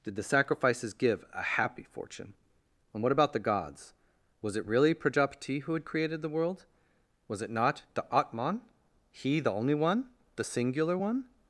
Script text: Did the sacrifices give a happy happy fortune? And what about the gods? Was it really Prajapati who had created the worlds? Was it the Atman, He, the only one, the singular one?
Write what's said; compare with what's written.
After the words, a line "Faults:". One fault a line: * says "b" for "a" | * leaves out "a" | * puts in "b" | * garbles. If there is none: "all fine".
Did the sacrifices give a happy fortune? And what about the gods? Was it really Prajapati who had created the world? Was it not the Atman, He, the only one, the singular one?
Faults:
* leaves out "happy"
* says "world" for "worlds"
* puts in "not"